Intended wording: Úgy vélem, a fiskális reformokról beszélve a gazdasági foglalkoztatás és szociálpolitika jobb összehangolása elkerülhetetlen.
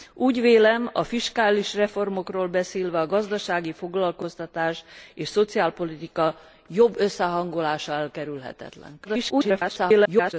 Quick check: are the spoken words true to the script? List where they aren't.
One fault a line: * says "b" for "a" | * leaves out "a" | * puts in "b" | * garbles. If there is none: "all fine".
* garbles